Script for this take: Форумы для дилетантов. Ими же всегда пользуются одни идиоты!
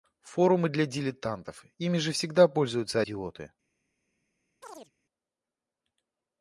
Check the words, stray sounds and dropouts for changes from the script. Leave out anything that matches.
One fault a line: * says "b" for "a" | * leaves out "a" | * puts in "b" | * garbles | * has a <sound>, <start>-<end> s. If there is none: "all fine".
* leaves out "одни"
* has a chirp, 4.6-4.9 s